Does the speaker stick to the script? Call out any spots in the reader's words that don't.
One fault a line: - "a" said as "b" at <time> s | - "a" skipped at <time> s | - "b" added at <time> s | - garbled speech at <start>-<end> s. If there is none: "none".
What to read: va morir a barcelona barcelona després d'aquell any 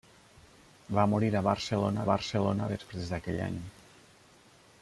none